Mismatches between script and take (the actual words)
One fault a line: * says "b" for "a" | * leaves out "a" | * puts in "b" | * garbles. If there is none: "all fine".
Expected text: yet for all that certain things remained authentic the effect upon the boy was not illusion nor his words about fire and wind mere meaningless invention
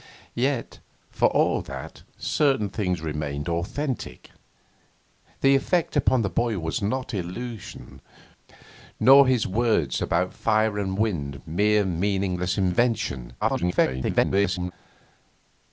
* garbles